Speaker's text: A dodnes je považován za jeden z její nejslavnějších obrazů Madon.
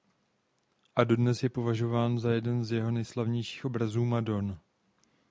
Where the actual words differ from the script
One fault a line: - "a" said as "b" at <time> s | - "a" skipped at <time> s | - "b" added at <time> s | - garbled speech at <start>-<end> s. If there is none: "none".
- "její" said as "jeho" at 2.7 s